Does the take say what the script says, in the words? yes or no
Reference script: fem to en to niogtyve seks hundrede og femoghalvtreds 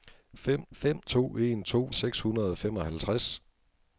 no